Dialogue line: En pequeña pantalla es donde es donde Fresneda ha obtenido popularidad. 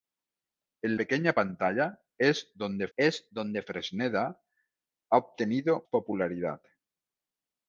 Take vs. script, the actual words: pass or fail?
pass